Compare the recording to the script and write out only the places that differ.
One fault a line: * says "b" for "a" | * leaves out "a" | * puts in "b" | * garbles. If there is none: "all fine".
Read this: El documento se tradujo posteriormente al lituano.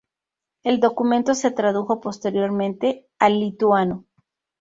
all fine